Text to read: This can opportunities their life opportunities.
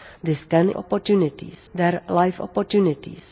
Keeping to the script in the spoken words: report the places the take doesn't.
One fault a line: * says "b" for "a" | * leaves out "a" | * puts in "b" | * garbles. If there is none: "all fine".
all fine